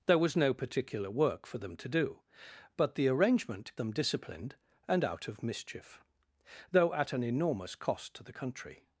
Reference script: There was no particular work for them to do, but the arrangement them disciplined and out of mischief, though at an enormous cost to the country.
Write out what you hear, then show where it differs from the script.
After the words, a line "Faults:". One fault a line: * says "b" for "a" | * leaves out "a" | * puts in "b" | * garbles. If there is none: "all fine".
There was no particular work for them to do, but the arrangement them disciplined and out of mischief, though at an enormous cost to the country.
Faults:
all fine